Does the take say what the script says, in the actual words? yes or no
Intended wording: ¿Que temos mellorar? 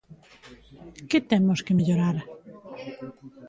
no